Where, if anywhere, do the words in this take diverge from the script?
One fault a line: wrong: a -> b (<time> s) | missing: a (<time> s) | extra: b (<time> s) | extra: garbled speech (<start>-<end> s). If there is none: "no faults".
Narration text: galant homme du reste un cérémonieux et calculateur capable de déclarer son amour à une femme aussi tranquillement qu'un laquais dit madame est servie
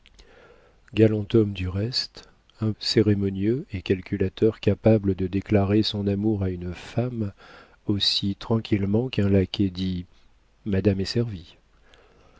no faults